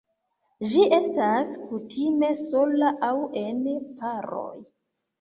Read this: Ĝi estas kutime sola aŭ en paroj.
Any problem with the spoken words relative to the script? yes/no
no